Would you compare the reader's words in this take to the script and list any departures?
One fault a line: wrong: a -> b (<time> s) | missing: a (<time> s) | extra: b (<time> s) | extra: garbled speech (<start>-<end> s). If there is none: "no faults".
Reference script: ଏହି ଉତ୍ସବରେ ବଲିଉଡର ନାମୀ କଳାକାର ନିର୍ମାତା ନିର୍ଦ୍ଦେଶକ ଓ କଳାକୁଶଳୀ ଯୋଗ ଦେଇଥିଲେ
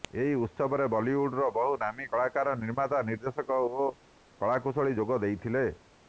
extra: ବହୁ (1.6 s)